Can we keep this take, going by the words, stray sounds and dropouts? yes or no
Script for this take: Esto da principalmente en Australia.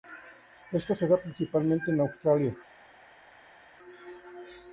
no